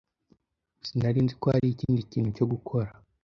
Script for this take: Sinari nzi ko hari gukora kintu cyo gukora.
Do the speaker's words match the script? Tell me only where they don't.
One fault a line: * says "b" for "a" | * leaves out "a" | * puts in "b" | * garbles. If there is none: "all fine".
* says "ikindi" for "gukora"